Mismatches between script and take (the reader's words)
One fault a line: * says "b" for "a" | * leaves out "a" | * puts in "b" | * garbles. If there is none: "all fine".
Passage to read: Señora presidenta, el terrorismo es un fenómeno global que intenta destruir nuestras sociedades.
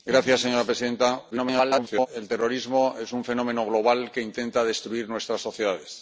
* garbles